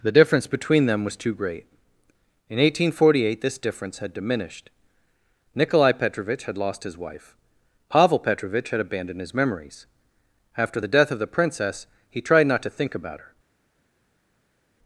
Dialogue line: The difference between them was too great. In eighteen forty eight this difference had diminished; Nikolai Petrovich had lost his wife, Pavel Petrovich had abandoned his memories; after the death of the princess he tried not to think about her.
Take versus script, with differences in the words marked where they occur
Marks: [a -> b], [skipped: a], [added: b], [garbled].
The difference between them was too great. In eighteen forty eight this difference had diminished; Nikolai Petrovich had lost his wife, Pavel Petrovich had abandoned his memories; after the death of the princess he tried not to think about her.